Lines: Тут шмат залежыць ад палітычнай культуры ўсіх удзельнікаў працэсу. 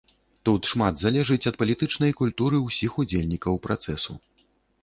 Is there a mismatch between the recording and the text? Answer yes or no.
no